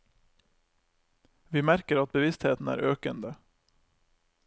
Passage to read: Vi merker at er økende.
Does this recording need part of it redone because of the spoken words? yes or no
yes